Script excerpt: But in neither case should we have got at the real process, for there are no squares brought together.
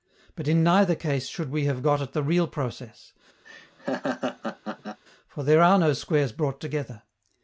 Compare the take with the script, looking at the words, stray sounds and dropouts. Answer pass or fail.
fail